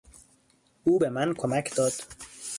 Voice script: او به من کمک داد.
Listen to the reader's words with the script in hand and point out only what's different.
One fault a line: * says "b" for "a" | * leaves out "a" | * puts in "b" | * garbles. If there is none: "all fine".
all fine